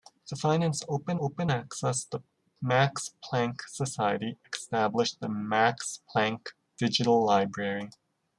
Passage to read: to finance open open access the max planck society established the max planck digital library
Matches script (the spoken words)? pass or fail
pass